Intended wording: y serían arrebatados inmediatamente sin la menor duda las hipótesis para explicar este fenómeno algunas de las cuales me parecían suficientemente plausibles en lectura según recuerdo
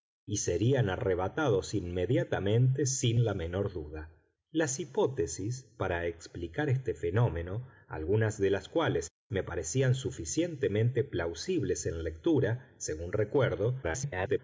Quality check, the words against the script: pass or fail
fail